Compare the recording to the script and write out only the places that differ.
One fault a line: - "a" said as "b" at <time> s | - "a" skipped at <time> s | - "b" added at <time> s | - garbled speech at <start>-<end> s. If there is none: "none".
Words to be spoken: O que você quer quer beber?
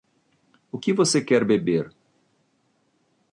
- "quer" skipped at 1.4 s